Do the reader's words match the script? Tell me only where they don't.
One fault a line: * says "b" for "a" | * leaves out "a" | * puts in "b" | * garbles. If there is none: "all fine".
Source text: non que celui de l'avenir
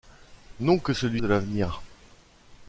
all fine